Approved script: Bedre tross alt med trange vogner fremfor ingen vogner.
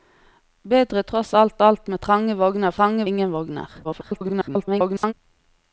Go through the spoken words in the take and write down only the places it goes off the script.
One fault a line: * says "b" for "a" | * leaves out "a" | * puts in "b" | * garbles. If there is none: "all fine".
* puts in "alt"
* says "trange" for "fremfor"
* garbles